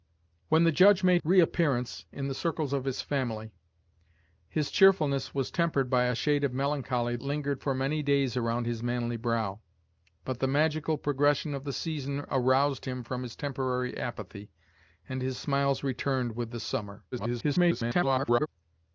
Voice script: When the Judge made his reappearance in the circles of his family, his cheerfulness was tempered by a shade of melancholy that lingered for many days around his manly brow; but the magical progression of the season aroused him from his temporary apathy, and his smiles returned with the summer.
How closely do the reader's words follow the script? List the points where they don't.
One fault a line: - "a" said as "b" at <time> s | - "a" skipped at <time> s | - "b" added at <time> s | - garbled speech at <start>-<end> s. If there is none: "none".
- "his" skipped at 1.2 s
- "that" skipped at 7.2 s
- garbled speech at 17.1-18.5 s